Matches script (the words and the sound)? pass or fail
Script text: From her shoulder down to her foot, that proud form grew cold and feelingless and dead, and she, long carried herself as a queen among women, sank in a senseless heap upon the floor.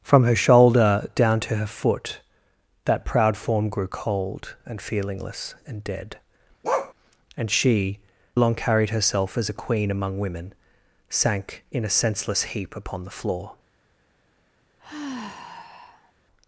fail